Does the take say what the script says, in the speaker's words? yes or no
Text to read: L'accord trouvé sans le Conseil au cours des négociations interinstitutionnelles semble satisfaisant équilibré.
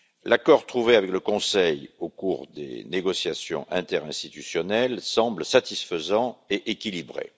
no